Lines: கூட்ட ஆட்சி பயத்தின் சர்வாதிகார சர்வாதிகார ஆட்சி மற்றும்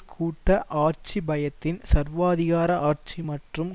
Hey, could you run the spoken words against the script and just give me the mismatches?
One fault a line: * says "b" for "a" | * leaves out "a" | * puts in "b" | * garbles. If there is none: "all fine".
* leaves out "சர்வாதிகார"